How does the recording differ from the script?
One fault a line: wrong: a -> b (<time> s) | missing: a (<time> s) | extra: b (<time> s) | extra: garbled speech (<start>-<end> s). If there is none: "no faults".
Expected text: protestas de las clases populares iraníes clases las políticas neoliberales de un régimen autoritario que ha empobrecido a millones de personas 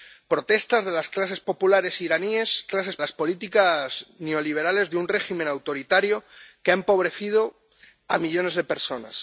no faults